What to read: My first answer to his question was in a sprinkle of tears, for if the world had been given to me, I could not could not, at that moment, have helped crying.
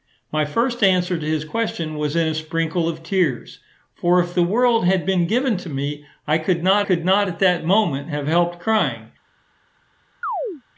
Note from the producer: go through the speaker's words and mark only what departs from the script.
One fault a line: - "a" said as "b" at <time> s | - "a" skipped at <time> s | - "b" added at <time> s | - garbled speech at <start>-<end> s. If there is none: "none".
none